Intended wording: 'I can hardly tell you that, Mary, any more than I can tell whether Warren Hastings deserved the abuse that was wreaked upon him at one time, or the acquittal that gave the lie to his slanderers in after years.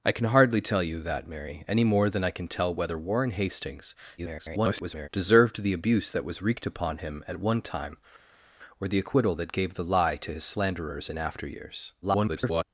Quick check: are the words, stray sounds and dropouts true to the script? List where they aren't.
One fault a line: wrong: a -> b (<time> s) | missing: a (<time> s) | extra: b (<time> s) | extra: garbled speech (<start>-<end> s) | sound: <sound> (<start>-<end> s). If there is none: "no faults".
extra: garbled speech (4.2-5.1 s)
extra: garbled speech (12.0-12.6 s)